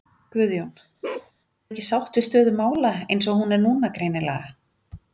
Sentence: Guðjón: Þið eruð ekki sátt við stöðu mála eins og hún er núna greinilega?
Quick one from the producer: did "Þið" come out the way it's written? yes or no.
no